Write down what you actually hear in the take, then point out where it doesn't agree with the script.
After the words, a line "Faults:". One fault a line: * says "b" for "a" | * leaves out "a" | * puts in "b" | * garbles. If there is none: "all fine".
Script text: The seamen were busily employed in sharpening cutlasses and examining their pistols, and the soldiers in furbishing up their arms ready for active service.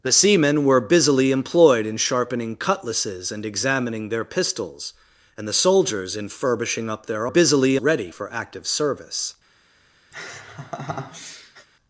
The seamen were busily employed in sharpening cutlasses and examining their pistols, and the soldiers in furbishing up their busily ready for active service.
Faults:
* says "busily" for "arms"